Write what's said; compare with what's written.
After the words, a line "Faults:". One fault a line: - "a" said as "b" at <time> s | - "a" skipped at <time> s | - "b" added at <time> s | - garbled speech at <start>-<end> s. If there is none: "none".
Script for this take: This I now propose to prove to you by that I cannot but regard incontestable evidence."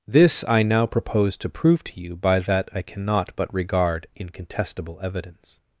This I now propose to prove to you by that I cannot but regard incontestable evidence."
Faults:
none